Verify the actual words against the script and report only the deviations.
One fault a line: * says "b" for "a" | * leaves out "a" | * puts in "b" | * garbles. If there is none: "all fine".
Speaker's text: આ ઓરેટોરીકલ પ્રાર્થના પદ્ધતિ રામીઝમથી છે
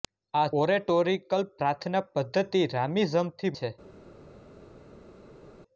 all fine